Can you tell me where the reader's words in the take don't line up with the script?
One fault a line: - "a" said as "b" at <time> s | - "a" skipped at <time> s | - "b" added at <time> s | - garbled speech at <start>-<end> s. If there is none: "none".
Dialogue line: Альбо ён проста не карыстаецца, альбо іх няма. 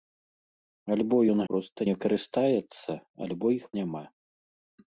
none